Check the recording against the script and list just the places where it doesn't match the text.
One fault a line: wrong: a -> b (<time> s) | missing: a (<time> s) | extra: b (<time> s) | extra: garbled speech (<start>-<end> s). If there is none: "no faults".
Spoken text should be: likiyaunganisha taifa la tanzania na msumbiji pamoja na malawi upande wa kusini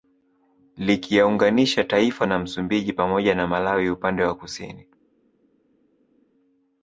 missing: la tanzania (2.2 s)